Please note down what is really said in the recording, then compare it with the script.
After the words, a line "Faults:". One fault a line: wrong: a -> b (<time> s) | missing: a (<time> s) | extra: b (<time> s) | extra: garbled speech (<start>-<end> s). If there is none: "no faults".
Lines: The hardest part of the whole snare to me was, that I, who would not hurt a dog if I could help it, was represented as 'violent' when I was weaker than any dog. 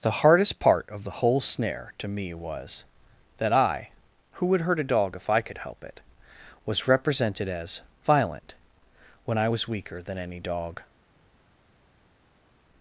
The hardest part of the whole snare to me was, that I, who would hurt a dog if I could help it, was represented as 'violent' when I was weaker than any dog.
Faults:
missing: not (4.6 s)